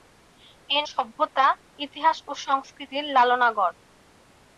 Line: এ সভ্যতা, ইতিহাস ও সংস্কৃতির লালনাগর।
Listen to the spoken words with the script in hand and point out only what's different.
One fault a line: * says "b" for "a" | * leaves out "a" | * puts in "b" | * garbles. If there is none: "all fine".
all fine